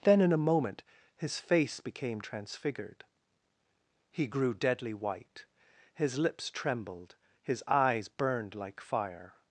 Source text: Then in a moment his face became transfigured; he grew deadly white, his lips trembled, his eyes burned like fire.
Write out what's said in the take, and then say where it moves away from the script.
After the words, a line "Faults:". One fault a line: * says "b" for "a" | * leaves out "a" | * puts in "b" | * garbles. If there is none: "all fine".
Then in a moment his face became transfigured; he grew deadly white, his lips trembled, his eyes burned like fire.
Faults:
all fine